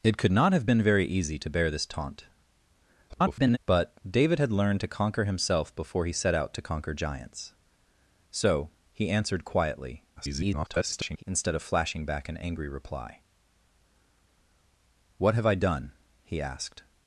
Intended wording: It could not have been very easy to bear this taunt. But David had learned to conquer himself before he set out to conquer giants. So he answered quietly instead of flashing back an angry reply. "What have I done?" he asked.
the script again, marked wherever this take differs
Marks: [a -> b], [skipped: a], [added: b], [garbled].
It could not have been very easy to bear this taunt. [garbled] But David had learned to conquer himself before he set out to conquer giants. So he answered quietly [garbled] instead of flashing back an angry reply. "What have I done?" he asked.